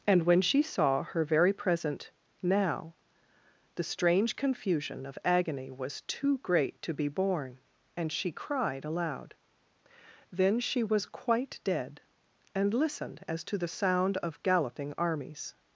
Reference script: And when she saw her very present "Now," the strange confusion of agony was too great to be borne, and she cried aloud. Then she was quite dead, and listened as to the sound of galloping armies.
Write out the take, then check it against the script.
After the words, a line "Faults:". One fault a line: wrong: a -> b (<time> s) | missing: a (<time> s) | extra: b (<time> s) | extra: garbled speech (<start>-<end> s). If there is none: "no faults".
And when she saw her very present "Now," the strange confusion of agony was too great to be borne, and she cried aloud. Then she was quite dead, and listened as to the sound of galloping armies.
Faults:
no faults